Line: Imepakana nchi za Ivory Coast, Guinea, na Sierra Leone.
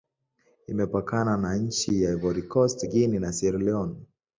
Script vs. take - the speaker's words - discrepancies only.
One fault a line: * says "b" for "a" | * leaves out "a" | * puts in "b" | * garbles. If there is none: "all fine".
* puts in "na"